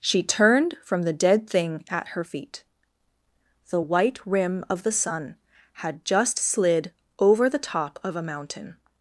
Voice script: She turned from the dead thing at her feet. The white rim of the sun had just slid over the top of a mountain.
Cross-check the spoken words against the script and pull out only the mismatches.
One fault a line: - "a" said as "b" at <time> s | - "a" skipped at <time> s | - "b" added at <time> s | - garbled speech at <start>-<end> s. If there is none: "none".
none